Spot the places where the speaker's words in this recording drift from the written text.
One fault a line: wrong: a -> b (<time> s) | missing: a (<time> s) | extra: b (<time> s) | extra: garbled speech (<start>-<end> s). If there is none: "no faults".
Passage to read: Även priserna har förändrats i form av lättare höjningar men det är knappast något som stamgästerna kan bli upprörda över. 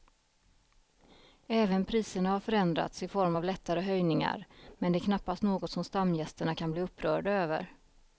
no faults